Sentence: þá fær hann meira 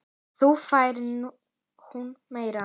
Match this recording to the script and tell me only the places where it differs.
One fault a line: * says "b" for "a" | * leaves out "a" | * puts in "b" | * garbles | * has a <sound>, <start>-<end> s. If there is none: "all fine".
* says "hún" for "hann"